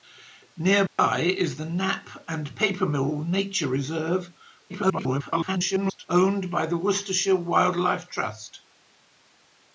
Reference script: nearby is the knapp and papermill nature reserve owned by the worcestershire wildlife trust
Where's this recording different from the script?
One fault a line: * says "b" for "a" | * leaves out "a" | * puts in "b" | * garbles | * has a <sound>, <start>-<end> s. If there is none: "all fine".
* has a dropout, 0.9-1.0 s
* garbles